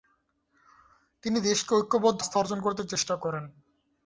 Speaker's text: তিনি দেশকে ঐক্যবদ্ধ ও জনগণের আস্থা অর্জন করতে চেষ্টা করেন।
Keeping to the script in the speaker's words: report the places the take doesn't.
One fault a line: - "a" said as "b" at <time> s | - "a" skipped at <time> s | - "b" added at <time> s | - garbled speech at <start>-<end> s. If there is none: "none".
- "ও জনগণের" skipped at 2.2 s